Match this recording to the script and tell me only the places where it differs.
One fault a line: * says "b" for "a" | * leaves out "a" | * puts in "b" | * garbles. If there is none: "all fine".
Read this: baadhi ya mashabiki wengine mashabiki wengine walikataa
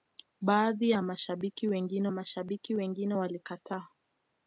all fine